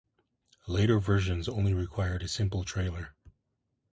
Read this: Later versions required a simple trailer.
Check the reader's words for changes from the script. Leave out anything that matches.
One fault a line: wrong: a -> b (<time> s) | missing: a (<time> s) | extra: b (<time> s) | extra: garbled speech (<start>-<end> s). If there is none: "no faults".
extra: only (1.5 s)